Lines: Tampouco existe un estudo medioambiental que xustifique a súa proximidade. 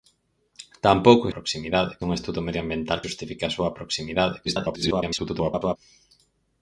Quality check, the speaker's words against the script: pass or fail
fail